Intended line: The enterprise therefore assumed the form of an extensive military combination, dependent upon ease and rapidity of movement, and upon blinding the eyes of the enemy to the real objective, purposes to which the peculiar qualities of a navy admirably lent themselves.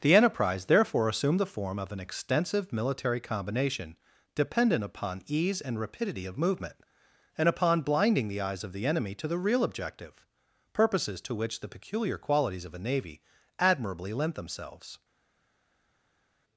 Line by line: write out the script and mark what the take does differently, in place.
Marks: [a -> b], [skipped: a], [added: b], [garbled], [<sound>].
The enterprise therefore assumed the form of an extensive military combination, dependent upon ease and rapidity of movement, and upon blinding the eyes of the enemy to the real objective, purposes to which the peculiar qualities of a navy admirably lent themselves.